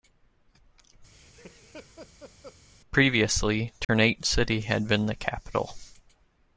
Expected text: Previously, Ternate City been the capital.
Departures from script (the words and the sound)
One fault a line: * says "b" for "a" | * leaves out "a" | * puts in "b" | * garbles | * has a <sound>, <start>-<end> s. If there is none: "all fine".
* has a laugh, 1.1-2.6 s
* has a dropout, 3.8-3.9 s
* puts in "had"